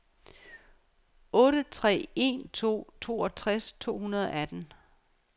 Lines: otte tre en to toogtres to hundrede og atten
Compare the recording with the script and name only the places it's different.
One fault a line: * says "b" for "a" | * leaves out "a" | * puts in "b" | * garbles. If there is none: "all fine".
all fine